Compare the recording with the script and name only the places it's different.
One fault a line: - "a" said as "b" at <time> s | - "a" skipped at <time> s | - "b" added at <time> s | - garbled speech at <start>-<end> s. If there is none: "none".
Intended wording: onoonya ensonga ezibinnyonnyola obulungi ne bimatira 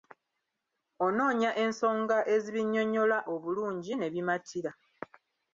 none